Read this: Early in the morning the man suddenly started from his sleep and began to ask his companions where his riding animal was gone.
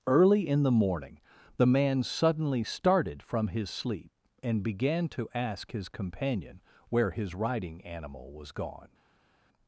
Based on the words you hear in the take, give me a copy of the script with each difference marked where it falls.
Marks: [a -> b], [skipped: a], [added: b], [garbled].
Early in the morning the man suddenly started from his sleep and began to ask his [companions -> companion] where his riding animal was gone.